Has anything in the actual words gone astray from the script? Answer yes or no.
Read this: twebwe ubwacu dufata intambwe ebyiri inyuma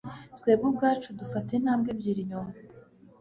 no